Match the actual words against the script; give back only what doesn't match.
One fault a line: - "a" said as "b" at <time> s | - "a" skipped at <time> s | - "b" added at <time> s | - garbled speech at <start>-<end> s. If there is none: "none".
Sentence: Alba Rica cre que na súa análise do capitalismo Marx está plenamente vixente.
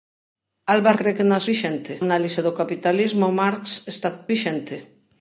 - "Rica" skipped at 0.9 s
- "súa" said as "vixente" at 1.5 s
- "plenamente" skipped at 4.1 s